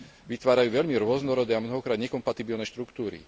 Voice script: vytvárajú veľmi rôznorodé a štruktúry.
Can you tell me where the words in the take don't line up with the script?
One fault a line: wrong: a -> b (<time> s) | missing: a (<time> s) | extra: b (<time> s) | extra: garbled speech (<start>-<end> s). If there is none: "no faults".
extra: mnohokrát nekompatibilné (1.6 s)